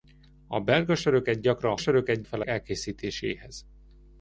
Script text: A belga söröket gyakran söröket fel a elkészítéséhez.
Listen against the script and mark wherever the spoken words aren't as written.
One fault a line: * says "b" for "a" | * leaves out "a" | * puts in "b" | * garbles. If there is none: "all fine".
all fine